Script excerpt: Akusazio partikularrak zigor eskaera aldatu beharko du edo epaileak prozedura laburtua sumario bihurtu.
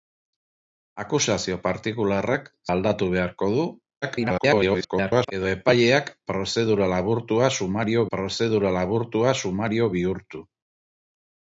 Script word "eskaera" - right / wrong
wrong